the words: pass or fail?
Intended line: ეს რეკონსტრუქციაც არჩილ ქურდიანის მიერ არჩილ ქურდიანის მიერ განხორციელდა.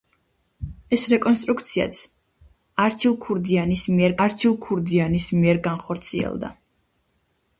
pass